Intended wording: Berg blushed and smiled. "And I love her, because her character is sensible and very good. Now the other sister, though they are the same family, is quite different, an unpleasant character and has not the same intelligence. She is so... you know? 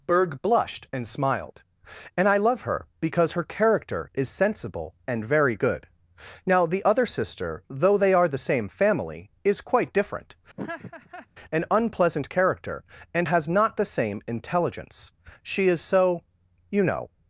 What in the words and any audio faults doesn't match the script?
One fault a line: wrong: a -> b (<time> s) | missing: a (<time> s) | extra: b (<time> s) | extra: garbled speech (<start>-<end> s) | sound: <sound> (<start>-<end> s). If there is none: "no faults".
sound: laugh (10.6-11.3 s)